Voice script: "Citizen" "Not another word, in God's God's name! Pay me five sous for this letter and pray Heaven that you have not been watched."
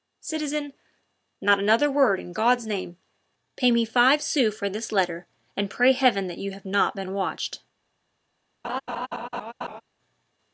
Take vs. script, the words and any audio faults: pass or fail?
fail